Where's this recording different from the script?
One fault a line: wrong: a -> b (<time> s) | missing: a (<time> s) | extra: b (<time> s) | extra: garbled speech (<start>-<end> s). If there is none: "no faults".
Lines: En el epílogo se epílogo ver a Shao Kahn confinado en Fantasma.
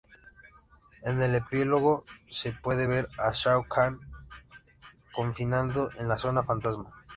wrong: epílogo -> puede (2.5 s)
extra: la Zona (6.1 s)